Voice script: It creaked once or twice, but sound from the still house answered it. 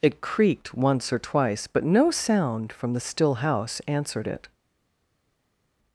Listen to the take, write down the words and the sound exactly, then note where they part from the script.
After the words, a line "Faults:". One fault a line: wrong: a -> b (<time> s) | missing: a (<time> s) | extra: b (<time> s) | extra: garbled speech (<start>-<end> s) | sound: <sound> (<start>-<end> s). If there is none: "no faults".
It creaked once or twice, but no sound from the still house answered it.
Faults:
extra: no (1.8 s)